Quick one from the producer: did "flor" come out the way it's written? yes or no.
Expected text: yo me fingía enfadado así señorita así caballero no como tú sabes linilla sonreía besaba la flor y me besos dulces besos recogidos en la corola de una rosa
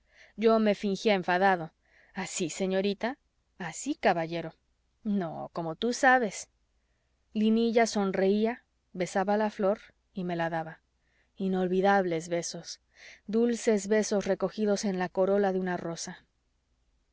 yes